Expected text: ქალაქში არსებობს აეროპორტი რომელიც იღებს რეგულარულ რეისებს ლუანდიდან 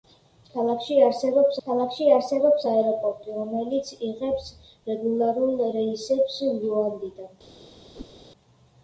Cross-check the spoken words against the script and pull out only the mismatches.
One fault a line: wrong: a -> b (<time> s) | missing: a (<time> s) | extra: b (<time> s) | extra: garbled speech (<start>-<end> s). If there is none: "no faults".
extra: ქალაქში არსებობს (1.6 s)